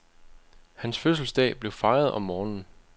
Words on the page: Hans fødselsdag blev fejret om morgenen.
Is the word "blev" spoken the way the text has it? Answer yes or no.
yes